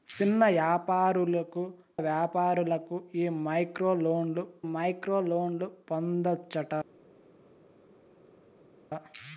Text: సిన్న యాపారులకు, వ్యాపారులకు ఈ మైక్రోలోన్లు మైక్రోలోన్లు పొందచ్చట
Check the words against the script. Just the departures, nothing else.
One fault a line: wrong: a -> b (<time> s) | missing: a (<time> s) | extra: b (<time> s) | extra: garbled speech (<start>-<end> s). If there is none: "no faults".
no faults